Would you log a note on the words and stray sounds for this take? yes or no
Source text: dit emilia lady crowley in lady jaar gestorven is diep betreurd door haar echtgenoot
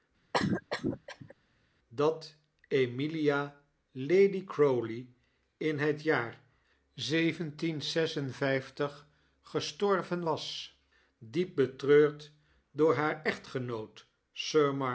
yes